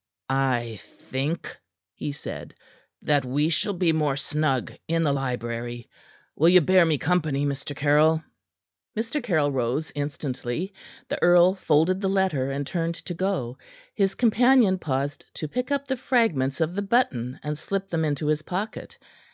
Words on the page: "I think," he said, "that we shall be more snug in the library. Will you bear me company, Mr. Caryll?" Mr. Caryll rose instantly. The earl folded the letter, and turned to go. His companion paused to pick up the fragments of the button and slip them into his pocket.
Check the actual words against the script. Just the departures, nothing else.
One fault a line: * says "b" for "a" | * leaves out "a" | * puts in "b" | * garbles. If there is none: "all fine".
all fine